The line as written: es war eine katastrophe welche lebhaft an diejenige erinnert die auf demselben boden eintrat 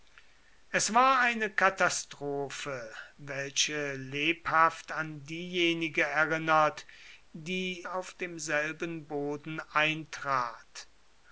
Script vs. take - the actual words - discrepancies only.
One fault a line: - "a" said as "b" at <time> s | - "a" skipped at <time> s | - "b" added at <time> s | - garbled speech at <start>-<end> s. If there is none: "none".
none